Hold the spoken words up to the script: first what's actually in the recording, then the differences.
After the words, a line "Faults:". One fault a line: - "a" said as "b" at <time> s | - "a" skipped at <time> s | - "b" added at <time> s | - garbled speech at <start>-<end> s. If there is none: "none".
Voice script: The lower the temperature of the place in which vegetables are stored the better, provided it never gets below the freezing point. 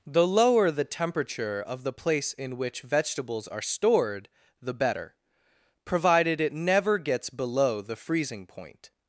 The lower the temperature of the place in which vegetables are stored the better, provided it never gets below the freezing point.
Faults:
none